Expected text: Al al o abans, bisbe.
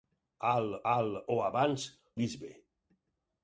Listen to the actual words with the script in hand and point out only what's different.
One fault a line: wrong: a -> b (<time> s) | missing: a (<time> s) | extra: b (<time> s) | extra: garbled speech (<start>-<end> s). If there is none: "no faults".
no faults